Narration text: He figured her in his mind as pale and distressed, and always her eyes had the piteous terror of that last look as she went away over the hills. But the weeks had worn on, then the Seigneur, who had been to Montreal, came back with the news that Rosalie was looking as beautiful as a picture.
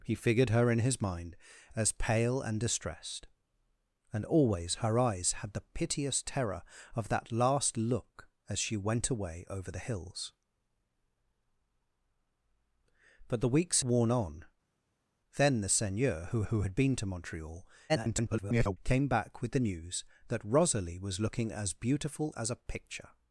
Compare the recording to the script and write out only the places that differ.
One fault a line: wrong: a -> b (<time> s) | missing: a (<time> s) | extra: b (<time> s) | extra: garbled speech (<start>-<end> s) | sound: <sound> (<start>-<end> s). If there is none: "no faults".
missing: had (13.8 s)
extra: who (16.4 s)
extra: garbled speech (17.9-18.8 s)